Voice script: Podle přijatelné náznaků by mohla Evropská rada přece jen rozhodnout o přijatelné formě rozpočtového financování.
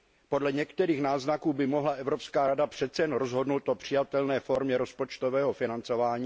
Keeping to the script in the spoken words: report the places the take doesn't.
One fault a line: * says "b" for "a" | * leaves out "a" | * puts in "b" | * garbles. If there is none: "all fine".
* says "některých" for "přijatelné"